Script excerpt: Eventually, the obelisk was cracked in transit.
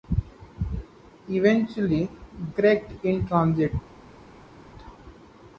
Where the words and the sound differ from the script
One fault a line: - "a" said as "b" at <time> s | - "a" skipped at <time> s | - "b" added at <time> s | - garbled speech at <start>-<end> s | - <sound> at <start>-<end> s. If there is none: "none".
- "the obelisk was" skipped at 2.1 s